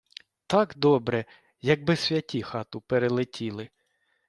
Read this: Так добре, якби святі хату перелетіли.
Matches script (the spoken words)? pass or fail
pass